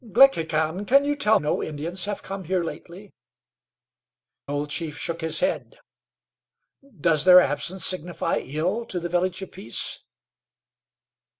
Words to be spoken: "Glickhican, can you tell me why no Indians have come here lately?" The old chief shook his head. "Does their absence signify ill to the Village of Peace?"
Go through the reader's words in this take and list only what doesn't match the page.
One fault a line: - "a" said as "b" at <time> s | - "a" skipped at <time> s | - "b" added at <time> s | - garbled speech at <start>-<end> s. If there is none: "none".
- "me why" skipped at 1.4 s
- "The" skipped at 3.1 s